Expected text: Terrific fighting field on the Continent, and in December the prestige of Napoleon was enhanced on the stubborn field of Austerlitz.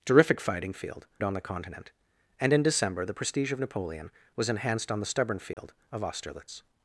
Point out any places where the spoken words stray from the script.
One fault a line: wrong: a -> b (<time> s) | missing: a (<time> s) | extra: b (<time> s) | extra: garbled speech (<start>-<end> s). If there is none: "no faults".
no faults